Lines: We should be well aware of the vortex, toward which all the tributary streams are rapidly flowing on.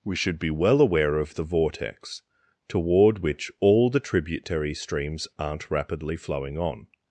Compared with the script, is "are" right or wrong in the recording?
wrong